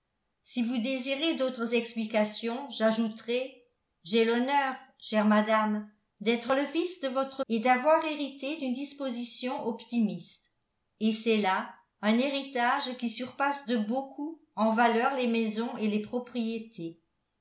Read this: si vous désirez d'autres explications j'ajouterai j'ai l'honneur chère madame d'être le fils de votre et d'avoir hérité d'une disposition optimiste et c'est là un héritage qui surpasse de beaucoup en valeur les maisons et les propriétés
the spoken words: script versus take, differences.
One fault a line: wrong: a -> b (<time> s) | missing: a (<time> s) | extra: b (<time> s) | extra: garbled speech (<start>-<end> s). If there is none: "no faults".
no faults